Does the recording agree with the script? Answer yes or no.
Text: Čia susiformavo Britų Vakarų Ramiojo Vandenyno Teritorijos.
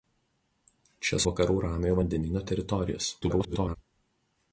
no